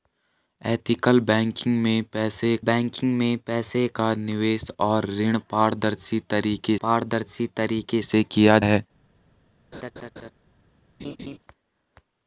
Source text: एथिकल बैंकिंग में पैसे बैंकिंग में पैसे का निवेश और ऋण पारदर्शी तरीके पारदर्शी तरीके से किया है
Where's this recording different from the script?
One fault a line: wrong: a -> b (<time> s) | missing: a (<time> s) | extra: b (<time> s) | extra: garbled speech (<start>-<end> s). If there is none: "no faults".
no faults